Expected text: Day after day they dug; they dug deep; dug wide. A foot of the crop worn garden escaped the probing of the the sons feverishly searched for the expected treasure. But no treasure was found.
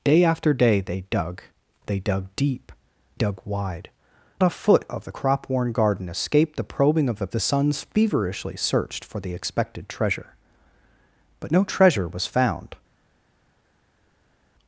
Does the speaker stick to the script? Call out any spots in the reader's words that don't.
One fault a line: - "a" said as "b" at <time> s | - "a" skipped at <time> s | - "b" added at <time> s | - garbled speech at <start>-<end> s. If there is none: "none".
none